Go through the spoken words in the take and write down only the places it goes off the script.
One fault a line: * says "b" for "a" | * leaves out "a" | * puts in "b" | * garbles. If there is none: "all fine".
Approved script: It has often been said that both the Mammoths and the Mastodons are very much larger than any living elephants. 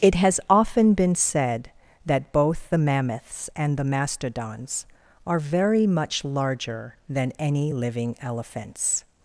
all fine